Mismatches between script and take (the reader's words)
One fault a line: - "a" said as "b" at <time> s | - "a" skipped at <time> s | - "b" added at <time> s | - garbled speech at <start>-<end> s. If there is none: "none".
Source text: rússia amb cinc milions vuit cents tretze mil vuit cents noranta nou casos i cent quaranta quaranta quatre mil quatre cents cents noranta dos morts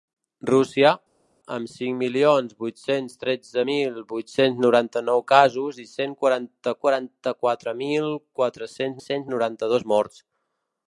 none